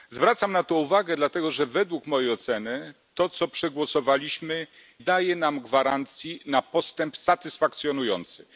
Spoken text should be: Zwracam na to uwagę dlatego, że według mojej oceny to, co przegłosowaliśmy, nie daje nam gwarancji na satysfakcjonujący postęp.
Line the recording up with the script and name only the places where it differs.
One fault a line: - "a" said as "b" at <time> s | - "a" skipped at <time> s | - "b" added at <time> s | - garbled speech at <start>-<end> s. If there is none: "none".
- "nie" skipped at 4.7 s